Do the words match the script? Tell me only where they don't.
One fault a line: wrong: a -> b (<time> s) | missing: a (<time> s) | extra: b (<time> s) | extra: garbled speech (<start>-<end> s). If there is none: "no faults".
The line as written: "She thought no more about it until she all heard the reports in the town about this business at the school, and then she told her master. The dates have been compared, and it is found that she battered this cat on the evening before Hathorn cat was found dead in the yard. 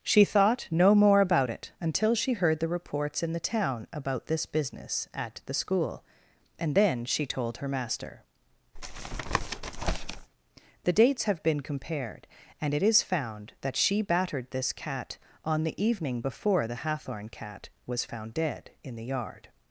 missing: all (2.3 s)
extra: the (16.7 s)